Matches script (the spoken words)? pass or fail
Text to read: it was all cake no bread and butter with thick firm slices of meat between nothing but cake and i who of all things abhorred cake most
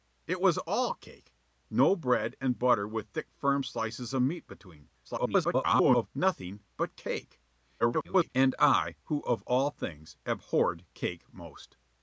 fail